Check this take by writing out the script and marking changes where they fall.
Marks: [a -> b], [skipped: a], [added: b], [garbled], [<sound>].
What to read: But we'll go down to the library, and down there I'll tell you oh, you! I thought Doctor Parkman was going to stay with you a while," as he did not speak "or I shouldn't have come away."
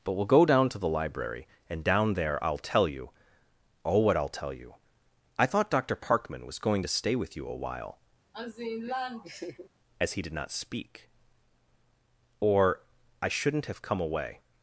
But we'll go down to the library, and down there I'll tell you oh, [added: what I'll tell] you! I thought Doctor Parkman was going to stay with you a while," [laugh] as he did not speak "or I shouldn't have come away."